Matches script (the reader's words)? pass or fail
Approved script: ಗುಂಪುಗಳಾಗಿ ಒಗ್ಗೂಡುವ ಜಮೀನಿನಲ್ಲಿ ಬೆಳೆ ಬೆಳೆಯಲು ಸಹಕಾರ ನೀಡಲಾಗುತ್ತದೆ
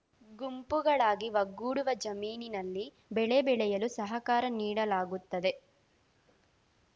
pass